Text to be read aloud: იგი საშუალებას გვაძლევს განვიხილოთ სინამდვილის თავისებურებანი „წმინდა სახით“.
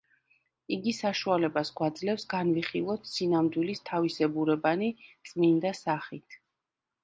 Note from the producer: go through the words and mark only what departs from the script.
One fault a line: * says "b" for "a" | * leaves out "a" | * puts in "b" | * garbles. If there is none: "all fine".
all fine